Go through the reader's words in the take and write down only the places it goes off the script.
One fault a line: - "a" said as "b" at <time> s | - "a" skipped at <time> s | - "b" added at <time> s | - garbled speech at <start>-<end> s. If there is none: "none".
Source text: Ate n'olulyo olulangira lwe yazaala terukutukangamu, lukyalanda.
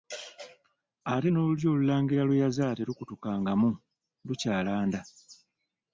none